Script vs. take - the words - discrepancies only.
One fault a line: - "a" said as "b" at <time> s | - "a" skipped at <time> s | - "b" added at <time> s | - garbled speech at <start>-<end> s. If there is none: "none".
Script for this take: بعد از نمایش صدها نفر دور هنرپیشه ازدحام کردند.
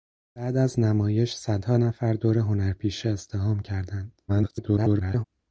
- garbled speech at 4.3-5.2 s